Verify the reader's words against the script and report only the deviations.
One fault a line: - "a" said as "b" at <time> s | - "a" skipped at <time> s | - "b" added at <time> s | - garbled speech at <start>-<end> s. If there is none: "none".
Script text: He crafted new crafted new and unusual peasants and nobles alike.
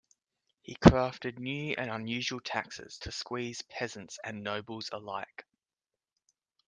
- "crafted new and unusual" said as "and unusual taxes to squeeze" at 1.8 s